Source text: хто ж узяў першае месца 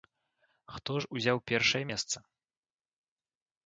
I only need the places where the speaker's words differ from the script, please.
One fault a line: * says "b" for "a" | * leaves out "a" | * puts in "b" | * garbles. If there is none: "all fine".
all fine